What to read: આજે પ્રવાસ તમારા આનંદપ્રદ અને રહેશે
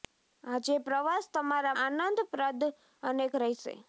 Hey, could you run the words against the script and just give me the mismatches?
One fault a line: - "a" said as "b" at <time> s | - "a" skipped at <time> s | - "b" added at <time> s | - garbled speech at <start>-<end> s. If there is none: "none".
none